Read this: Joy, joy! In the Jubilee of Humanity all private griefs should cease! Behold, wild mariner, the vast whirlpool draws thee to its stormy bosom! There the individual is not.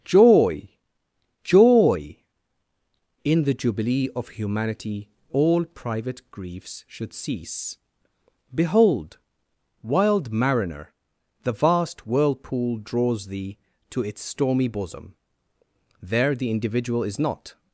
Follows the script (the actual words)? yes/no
yes